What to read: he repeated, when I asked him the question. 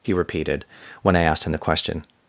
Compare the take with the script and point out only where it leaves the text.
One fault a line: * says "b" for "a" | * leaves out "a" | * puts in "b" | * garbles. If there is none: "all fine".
all fine